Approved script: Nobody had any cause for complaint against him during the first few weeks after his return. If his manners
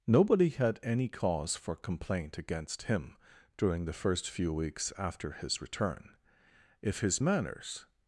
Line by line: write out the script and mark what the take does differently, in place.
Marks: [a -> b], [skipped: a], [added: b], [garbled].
Nobody had any cause for complaint against him during the first few weeks after his return. If his manners